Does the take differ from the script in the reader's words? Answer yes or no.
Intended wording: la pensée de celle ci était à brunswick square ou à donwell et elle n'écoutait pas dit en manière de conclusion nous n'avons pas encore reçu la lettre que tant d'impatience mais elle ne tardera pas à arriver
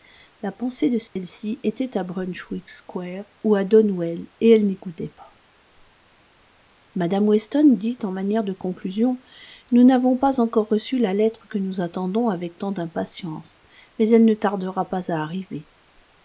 yes